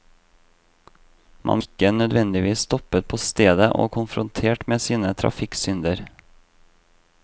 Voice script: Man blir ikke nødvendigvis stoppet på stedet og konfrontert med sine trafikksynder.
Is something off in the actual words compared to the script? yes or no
yes